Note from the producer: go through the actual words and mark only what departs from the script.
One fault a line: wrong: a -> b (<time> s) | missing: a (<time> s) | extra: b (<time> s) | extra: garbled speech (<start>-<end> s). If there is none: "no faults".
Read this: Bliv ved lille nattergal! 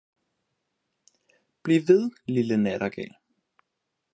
no faults